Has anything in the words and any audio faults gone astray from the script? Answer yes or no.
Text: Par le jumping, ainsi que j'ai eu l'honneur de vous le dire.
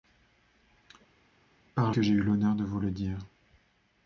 yes